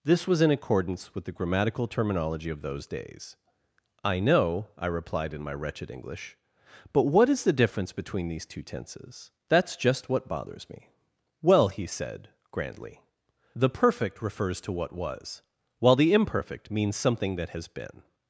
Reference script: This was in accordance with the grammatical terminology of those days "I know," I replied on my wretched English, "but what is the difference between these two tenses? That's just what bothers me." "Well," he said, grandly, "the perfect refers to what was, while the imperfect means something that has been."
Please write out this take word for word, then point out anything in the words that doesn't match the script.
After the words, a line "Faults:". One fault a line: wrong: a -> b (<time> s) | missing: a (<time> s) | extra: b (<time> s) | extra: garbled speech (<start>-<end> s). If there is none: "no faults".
This was in accordance with the grammatical terminology of those days "I know," I replied in my wretched English, "but what is the difference between these two tenses? That's just what bothers me." "Well," he said, grandly, "the perfect refers to what was, while the imperfect means something that has been."
Faults:
wrong: on -> in (5.3 s)